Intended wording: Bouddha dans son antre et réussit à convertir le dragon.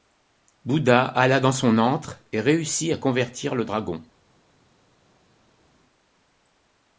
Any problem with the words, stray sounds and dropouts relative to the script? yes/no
yes